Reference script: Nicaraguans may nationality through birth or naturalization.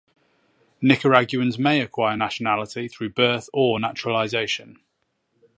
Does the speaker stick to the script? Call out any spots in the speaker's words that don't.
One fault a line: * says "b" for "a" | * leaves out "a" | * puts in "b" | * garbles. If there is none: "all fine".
* puts in "acquire"